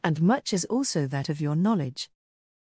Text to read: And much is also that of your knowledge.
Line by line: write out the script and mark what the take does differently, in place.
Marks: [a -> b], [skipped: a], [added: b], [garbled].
And much is also that of your knowledge.